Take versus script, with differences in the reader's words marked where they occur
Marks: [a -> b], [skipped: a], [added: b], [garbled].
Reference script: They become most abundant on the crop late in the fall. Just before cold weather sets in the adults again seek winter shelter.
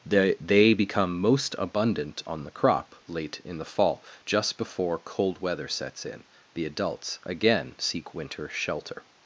They [added: they] become most abundant on the crop late in the fall. Just before cold weather sets in the adults again seek winter shelter.